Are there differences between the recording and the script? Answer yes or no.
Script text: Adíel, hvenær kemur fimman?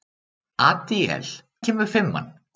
yes